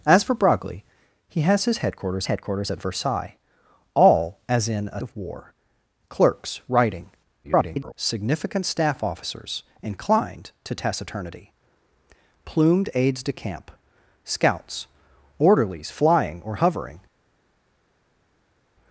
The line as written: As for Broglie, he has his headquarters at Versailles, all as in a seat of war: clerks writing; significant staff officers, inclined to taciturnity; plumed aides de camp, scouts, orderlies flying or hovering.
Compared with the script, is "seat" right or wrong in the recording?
wrong